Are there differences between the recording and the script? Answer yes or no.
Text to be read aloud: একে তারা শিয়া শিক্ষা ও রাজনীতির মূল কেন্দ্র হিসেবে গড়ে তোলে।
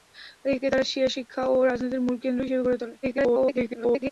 yes